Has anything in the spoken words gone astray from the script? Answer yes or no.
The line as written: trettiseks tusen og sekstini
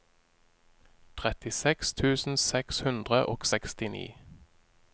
yes